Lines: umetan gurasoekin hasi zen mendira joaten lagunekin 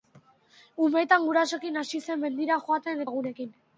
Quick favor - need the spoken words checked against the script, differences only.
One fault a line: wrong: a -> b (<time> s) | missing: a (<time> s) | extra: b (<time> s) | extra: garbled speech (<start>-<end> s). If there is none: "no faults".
no faults